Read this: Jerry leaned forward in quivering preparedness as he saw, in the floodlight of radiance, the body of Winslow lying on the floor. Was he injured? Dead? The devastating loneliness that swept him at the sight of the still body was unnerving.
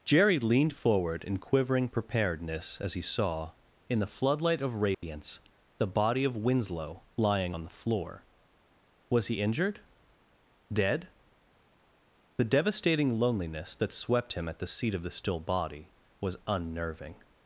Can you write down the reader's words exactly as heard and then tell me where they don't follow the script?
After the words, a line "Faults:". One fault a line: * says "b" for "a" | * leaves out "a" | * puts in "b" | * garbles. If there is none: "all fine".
Jerry leaned forward in quivering preparedness as he saw, in the floodlight of radiance, the body of Winslow lying on the floor. Was he injured? Dead? The devastating loneliness that swept him at the seat of the still body was unnerving.
Faults:
* says "seat" for "sight"